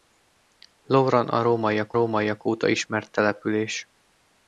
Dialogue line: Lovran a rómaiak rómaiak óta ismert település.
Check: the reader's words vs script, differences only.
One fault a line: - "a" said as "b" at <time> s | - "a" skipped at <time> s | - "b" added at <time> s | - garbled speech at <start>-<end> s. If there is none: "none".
none